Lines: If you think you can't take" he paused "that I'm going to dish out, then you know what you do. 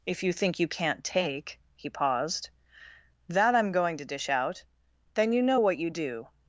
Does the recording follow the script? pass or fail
pass